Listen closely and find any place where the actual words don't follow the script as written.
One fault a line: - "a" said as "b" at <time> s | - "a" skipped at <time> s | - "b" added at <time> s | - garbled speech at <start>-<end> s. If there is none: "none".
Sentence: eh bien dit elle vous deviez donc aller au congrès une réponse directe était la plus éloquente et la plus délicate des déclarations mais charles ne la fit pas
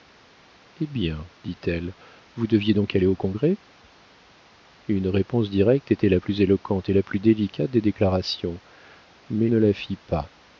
- "charles" skipped at 9.5 s